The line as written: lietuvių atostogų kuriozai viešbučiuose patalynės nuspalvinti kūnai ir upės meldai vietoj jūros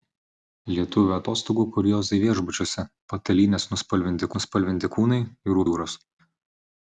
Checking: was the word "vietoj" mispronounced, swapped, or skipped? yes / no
yes